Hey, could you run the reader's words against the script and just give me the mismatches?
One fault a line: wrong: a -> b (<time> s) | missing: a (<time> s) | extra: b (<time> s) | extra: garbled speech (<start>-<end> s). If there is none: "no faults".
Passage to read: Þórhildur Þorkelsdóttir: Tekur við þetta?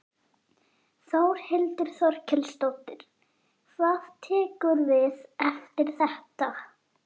extra: Hvað (3.8 s)
extra: eftir (5.5 s)